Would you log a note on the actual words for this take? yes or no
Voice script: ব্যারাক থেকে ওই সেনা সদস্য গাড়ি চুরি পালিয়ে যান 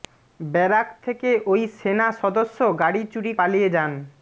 no